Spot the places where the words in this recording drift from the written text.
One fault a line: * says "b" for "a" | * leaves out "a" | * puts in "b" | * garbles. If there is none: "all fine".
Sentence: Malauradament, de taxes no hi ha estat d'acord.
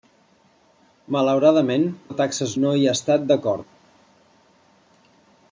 all fine